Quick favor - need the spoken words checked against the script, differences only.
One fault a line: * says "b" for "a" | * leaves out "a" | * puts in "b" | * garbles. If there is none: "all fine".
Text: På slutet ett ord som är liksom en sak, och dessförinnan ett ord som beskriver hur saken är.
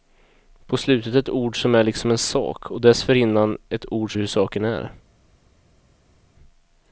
* leaves out "som beskriver"